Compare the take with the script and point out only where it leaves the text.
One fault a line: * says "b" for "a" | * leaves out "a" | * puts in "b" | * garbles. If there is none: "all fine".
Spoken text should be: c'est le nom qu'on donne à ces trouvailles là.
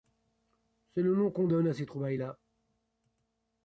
all fine